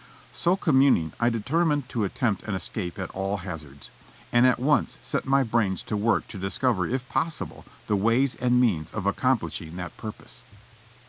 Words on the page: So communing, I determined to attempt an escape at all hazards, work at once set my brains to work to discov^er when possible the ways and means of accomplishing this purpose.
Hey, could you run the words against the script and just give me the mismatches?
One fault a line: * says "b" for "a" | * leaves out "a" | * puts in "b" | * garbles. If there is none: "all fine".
* says "and" for "work"
* says "if" for "when"
* says "that" for "this"